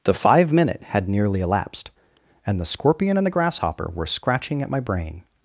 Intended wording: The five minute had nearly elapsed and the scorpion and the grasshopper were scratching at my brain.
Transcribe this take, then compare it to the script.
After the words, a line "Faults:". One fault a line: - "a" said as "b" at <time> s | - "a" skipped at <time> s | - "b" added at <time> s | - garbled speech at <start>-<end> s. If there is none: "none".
The five minute had nearly elapsed and the scorpion and the grasshopper were scratching at my brain.
Faults:
none